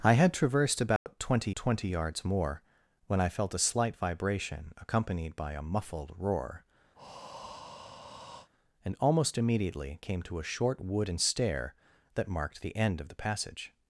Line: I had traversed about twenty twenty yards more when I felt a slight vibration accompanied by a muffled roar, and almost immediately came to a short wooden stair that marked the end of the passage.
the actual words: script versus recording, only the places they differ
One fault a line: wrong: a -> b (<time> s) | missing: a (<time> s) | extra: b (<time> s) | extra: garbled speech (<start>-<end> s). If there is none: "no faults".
no faults